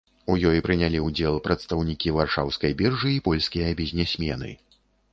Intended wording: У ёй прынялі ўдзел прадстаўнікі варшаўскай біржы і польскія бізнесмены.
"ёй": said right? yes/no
yes